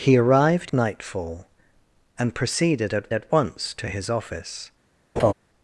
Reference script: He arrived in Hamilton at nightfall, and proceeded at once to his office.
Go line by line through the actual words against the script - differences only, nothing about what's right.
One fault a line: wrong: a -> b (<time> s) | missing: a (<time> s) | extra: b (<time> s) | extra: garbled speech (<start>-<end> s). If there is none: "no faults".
missing: in Hamilton at (0.7 s)
extra: at (3.1 s)